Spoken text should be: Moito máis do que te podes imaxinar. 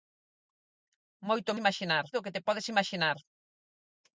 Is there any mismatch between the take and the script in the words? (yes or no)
yes